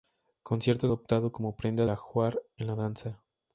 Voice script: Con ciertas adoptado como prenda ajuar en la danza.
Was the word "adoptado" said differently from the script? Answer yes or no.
no